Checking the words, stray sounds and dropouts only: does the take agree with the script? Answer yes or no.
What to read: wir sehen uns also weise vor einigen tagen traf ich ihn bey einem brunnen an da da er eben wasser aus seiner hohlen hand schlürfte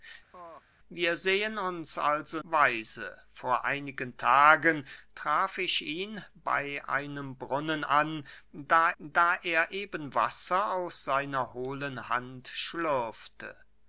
no